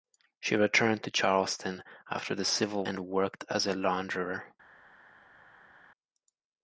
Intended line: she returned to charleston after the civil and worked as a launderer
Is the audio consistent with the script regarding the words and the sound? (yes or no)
yes